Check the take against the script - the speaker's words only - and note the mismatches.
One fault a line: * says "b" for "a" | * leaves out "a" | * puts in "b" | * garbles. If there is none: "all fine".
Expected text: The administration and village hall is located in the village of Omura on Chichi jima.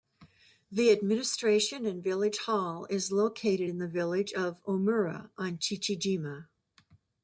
all fine